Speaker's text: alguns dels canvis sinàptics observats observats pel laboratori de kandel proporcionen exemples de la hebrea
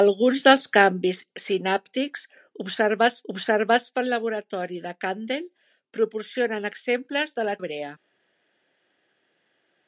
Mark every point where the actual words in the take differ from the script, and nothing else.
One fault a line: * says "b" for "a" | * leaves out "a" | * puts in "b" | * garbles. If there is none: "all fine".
all fine